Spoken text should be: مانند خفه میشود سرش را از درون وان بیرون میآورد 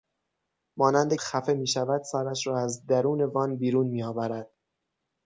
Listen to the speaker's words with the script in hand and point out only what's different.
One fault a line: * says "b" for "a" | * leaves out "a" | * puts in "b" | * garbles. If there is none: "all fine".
all fine